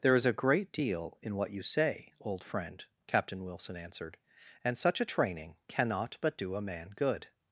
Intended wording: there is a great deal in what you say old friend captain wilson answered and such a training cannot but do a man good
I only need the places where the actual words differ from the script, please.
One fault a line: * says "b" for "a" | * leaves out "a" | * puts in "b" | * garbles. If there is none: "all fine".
all fine